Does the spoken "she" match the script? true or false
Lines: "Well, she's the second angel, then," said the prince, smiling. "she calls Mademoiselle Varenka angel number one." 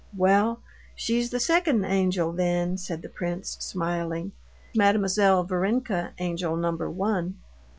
false